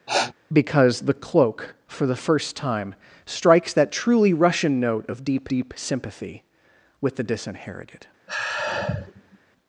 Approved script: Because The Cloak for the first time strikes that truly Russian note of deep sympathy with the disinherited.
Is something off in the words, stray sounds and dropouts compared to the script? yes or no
yes